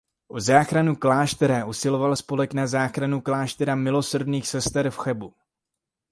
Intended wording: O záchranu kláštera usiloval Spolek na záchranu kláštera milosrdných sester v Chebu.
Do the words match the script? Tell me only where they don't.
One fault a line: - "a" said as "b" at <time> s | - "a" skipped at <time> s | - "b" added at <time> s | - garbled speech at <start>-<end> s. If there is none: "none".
none